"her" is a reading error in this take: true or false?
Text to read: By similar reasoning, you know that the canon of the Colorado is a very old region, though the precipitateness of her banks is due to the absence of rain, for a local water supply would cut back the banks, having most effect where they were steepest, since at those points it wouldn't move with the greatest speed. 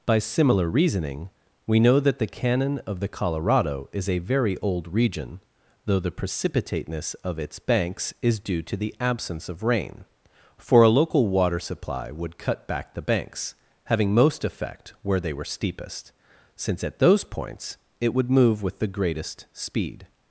true